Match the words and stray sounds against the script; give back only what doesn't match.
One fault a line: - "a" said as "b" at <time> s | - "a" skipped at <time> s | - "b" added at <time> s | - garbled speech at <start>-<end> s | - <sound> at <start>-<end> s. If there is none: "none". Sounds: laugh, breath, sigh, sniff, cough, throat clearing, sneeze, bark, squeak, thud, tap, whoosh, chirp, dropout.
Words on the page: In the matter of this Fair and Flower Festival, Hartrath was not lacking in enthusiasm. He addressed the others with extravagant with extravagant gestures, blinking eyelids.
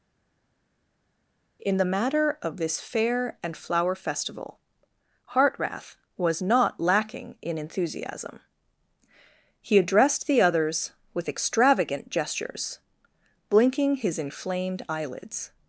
- "with extravagant gestures blinking" said as "gestures blinking his inflamed" at 12.1 s